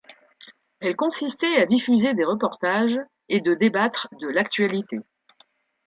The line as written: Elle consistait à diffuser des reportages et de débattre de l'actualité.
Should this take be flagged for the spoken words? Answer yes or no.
no